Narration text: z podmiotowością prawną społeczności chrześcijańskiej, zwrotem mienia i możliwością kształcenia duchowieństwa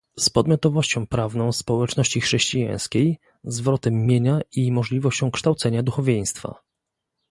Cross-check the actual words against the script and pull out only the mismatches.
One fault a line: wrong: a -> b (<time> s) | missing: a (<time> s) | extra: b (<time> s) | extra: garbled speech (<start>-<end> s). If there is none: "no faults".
no faults